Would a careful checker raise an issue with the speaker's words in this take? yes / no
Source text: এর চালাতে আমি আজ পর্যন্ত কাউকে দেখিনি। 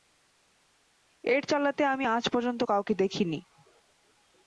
no